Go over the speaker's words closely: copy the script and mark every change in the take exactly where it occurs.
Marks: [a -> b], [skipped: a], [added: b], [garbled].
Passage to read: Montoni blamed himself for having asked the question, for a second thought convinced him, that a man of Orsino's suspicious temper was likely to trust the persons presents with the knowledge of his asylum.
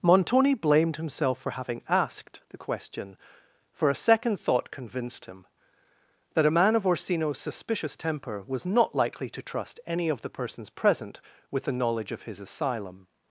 Montoni blamed himself for having asked the question, for a second thought convinced him, that a man of Orsino's suspicious temper was [added: not] likely to trust [added: any of] the persons [presents -> present] with the knowledge of his asylum.